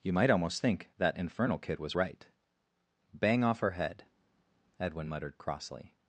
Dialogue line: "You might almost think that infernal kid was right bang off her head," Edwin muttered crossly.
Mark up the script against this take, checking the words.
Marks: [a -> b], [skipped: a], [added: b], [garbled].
"You might almost think that infernal kid was right bang off her head," Edwin muttered crossly.